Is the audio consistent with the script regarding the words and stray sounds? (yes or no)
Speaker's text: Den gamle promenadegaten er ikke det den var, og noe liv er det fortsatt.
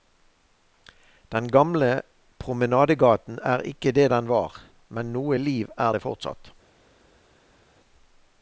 no